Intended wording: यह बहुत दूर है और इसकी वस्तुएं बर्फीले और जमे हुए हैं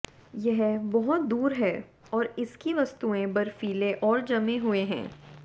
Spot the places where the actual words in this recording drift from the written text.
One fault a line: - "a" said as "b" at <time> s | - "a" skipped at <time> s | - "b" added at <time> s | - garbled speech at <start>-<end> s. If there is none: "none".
none